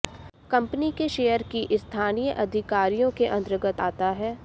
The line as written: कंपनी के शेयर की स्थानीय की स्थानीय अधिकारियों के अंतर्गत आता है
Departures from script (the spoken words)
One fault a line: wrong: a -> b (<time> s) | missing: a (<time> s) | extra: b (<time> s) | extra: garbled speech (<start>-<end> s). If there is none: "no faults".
missing: की स्थानीय (2.3 s)